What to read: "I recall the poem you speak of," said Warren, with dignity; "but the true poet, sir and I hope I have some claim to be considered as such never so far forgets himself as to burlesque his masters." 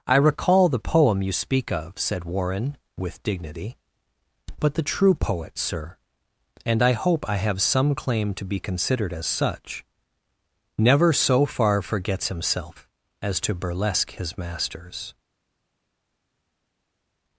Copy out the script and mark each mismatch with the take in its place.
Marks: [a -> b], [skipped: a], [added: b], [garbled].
"I recall the poem you speak of," said Warren, with dignity; "but the true poet, sir and I hope I have some claim to be considered as such never so far forgets himself as to burlesque his masters."